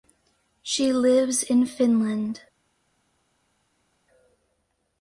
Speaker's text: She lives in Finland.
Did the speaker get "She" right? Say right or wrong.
right